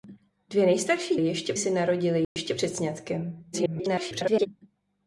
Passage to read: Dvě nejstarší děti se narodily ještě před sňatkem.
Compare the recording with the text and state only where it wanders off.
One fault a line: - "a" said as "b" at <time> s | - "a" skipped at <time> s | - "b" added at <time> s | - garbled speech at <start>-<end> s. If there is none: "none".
- "děti" said as "ještě" at 1.2 s
- garbled speech at 3.5-4.5 s